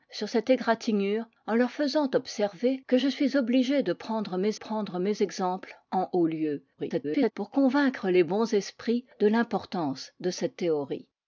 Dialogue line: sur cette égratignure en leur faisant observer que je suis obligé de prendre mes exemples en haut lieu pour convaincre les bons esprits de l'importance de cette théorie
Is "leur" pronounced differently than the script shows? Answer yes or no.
no